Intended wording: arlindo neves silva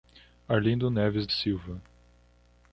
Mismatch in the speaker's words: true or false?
false